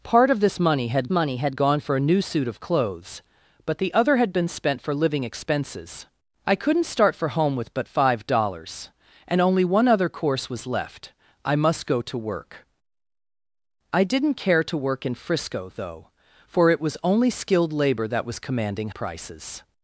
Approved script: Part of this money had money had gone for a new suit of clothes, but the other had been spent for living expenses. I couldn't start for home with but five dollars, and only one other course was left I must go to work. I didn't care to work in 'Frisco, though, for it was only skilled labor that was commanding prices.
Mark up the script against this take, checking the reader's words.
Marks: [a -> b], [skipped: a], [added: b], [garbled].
Part of this money had money had gone for a new suit of clothes, but the other had been spent for living expenses. I couldn't start for home with but five dollars, and only one other course was left I must go to work. I didn't care to work in 'Frisco, though, for it was only skilled labor that was commanding prices.